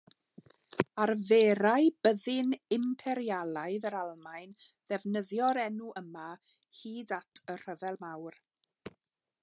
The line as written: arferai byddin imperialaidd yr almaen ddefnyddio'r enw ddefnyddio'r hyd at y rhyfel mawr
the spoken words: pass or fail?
fail